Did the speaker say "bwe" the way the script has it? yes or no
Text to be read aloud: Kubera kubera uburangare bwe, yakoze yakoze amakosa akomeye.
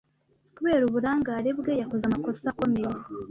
yes